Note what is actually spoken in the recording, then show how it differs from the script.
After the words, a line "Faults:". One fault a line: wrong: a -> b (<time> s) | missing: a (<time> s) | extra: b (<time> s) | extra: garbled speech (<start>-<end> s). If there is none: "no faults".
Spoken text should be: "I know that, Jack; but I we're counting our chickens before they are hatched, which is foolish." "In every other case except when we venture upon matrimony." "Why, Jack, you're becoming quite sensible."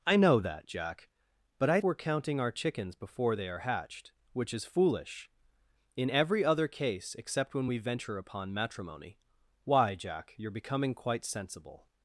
"I know that, Jack; but I we're counting our chickens before they are hatched, which is foolish." "In every other case except when we venture upon matrimony." "Why, Jack, you're becoming quite sensible."
Faults:
no faults